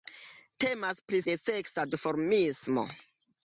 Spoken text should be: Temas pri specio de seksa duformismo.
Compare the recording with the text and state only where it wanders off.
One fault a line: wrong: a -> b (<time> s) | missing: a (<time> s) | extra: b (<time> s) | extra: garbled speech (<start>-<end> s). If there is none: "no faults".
missing: specio (1.2 s)